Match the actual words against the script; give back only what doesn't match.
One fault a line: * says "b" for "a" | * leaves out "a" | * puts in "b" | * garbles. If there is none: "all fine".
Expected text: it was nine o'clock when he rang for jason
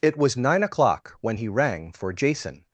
all fine